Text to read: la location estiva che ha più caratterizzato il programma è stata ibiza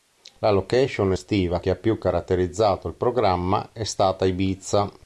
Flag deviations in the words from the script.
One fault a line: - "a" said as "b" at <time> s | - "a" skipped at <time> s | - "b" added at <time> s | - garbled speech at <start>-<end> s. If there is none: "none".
none